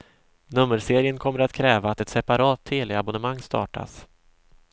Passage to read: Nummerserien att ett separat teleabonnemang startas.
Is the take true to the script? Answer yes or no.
no